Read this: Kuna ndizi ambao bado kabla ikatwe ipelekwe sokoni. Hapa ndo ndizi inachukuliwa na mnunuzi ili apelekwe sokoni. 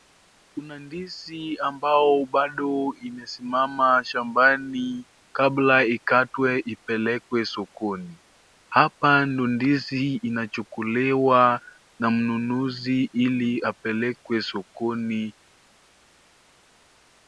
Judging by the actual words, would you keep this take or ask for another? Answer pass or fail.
fail